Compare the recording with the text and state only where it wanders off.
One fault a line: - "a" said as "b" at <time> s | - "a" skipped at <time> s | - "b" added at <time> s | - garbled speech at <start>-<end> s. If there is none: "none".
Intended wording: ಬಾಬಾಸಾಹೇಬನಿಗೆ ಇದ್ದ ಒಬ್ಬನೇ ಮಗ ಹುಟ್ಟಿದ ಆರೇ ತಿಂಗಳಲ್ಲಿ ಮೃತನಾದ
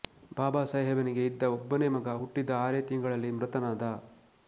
none